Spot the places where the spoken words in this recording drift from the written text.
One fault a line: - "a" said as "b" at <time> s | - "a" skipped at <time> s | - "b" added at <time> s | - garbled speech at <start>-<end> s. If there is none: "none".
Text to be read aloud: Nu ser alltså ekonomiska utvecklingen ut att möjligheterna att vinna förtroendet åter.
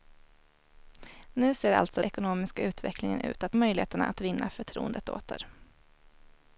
none